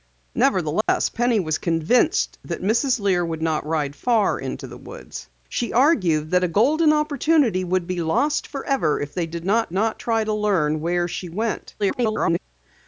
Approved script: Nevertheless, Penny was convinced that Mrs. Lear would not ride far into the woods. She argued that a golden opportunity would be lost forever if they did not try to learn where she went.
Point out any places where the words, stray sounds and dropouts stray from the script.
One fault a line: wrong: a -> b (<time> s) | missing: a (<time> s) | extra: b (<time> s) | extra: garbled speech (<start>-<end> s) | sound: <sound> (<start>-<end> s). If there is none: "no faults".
sound: dropout (0.8-0.9 s)
extra: not (9.7 s)
extra: garbled speech (11.8-12.4 s)